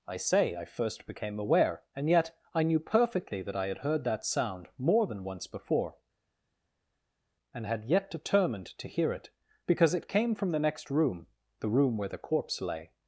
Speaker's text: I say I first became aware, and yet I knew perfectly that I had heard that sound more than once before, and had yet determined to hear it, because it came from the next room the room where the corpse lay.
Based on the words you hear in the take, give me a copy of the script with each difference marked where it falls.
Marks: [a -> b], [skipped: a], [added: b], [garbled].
I say I first became aware, and yet I knew perfectly that I had heard that sound more than once before, and had yet determined to hear it, because it came from the next room the room where the corpse lay.